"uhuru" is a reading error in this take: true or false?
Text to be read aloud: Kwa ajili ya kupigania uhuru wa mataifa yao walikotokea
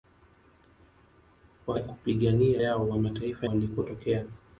true